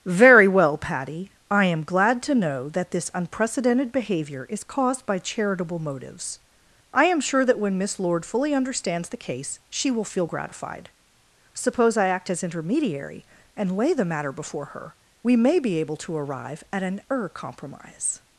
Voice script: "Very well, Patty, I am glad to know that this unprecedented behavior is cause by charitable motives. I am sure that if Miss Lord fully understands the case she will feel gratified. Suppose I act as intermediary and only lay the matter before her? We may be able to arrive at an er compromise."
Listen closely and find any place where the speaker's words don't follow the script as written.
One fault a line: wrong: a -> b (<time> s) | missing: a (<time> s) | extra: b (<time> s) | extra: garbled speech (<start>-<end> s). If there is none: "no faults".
wrong: cause -> caused (4.6 s)
wrong: if -> when (7.6 s)
missing: only (13.8 s)